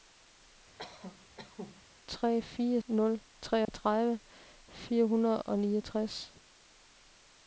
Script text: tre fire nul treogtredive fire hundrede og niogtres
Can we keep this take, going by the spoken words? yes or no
yes